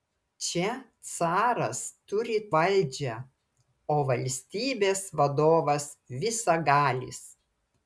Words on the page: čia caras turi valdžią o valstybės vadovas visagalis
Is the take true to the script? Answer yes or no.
yes